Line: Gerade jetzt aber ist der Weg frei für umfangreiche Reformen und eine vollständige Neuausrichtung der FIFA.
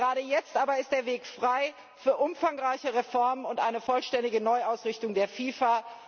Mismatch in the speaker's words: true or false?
false